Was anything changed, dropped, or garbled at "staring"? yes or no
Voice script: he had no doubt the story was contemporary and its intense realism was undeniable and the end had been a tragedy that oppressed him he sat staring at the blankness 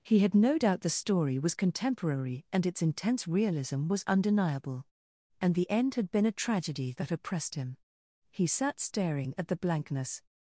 no